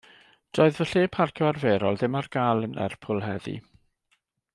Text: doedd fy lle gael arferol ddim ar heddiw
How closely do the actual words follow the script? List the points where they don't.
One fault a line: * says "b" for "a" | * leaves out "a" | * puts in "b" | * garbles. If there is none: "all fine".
* says "parcio" for "gael"
* puts in "gael yn lerpwl"